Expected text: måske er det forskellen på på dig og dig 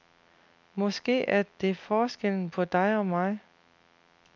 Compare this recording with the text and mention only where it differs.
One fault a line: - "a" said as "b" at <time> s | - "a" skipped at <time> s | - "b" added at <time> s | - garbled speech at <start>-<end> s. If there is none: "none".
- "på" skipped at 2.6 s
- "dig" said as "mig" at 3.1 s